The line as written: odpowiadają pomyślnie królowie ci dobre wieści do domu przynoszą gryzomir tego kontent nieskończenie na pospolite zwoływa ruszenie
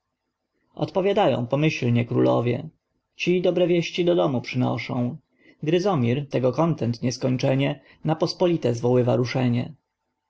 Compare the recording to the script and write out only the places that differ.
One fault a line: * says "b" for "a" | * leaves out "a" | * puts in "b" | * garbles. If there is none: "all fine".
all fine